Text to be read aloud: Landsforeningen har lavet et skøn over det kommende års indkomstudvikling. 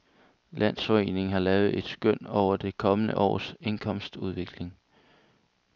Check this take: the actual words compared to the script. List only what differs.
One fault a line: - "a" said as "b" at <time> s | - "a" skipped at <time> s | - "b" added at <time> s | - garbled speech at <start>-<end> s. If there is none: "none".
none